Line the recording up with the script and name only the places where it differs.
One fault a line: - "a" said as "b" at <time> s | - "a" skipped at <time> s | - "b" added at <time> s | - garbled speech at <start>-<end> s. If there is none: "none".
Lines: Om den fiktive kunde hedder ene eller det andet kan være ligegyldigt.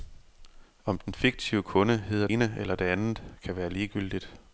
none